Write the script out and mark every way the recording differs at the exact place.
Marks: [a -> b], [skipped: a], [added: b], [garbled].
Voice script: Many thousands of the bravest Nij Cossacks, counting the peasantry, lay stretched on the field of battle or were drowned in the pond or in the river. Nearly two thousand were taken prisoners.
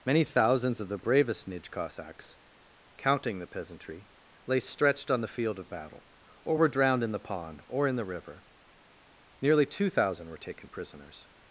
Many thousands of the bravest Nij Cossacks, counting the peasantry, lay stretched on the field of battle or were drowned in the pond or in the river. Nearly two thousand were taken prisoners.